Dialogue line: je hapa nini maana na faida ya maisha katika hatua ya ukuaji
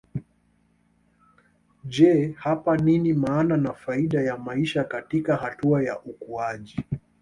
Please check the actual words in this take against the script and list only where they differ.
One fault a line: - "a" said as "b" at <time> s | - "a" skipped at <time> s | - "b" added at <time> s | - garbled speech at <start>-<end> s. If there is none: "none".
none